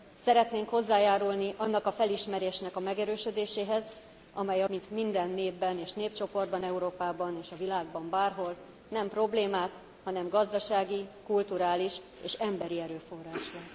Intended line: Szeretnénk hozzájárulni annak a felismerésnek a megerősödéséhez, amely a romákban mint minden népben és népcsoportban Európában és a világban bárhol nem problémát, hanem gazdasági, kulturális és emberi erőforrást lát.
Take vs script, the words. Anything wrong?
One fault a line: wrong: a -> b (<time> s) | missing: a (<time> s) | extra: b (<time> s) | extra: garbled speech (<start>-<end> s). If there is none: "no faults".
missing: romákban (4.7 s)